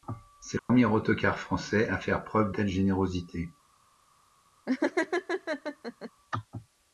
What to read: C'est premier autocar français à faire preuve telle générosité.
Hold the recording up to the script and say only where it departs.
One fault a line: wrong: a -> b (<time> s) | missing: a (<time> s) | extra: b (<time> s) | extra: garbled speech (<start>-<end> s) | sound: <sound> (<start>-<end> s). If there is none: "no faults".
sound: dropout (0.6-0.7 s)
sound: laugh (4.7-6.1 s)